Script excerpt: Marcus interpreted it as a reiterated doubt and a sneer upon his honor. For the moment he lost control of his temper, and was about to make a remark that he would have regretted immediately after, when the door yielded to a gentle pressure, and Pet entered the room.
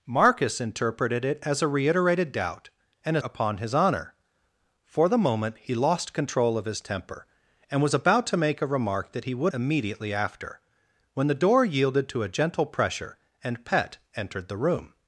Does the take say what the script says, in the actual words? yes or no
no